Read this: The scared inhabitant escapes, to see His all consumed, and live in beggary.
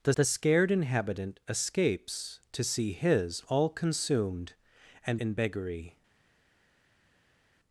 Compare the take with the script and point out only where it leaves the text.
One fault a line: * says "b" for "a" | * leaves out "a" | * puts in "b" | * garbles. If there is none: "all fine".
* puts in "the"
* leaves out "live"